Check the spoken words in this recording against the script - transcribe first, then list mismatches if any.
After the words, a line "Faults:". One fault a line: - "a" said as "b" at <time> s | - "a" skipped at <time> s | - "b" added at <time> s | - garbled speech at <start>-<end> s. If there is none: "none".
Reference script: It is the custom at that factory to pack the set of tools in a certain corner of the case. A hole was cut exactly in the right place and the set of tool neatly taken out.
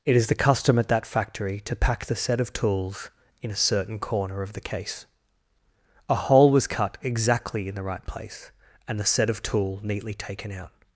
It is the custom at that factory to pack the set of tools in a certain corner of the case. A hole was cut exactly in the right place and the set of tool neatly taken out.
Faults:
none